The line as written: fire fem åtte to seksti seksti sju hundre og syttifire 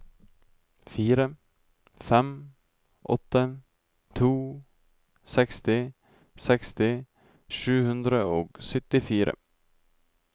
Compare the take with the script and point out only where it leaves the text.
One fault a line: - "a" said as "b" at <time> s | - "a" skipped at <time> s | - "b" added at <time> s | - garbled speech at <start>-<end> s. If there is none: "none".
none